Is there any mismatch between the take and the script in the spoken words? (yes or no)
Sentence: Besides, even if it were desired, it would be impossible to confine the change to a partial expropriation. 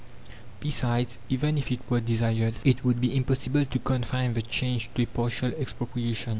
no